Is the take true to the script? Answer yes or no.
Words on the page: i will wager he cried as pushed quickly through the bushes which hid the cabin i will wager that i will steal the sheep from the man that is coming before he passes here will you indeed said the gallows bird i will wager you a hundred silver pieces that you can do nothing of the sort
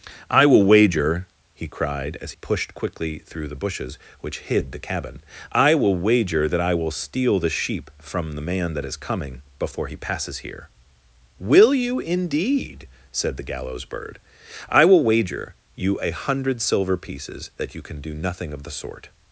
yes